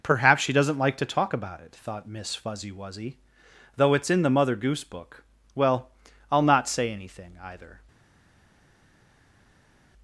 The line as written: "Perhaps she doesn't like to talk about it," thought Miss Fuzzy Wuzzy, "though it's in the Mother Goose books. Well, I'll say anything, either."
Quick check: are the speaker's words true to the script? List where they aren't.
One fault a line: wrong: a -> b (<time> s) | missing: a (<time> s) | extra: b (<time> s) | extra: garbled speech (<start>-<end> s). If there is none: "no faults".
wrong: books -> book (4.8 s)
extra: not (6.4 s)